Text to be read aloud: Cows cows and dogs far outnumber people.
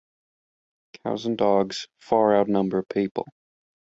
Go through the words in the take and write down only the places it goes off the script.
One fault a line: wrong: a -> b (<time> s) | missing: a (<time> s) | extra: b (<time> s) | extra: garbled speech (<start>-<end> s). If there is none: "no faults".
missing: cows (1.3 s)